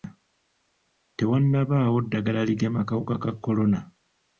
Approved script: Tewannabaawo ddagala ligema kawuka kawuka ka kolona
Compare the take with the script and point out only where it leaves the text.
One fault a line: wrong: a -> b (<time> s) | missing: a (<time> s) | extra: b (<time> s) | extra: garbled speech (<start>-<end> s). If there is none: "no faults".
missing: kawuka (3.1 s)